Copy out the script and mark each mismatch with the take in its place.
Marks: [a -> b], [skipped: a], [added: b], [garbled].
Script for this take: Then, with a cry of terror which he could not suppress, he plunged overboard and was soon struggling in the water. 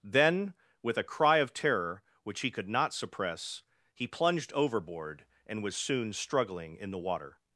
Then, with a cry of terror which he could not suppress, he plunged overboard and was soon struggling in the water.